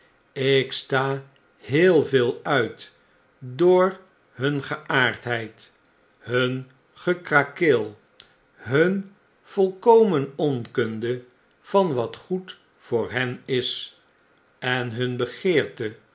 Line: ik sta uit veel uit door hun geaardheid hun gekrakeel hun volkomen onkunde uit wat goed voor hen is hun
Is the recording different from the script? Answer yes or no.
yes